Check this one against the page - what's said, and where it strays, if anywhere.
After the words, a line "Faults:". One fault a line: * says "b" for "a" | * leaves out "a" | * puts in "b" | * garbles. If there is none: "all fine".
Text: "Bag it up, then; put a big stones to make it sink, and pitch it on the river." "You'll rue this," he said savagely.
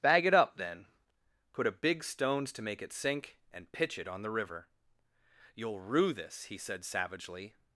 "Bag it up, then; put a big stones to make it sink, and pitch it on the river." "You'll rue this," he said savagely.
Faults:
all fine